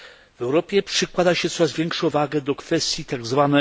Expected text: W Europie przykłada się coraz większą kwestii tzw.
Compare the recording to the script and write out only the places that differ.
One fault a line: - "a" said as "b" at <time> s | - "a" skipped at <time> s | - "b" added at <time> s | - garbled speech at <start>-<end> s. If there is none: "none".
- "wagę do" added at 2.1 s